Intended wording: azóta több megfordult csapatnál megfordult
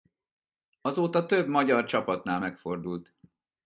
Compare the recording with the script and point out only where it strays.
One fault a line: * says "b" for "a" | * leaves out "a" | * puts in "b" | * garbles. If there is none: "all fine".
* says "magyar" for "megfordult"